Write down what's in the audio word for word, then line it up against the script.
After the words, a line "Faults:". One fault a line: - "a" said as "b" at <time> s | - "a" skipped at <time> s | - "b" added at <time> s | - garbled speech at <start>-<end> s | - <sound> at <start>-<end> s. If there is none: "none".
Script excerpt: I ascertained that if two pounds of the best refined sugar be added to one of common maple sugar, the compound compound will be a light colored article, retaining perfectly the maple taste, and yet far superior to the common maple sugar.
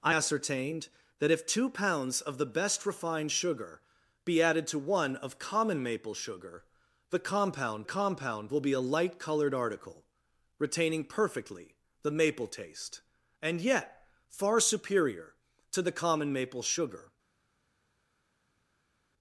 I ascertained that if two pounds of the best refined sugar be added to one of common maple sugar, the compound compound will be a light colored article, retaining perfectly the maple taste, and yet far superior to the common maple sugar.
Faults:
none